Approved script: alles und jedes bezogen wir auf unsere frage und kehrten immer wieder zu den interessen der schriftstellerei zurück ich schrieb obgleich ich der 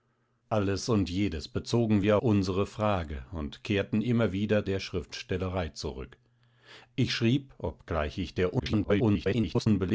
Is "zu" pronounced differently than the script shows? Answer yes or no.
yes